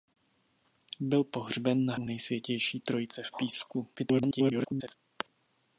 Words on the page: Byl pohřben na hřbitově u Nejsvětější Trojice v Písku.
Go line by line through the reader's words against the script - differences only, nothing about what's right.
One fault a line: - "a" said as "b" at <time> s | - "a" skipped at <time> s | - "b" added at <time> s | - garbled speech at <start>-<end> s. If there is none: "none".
- "hřbitově" skipped at 1.9 s
- garbled speech at 4.0-4.9 s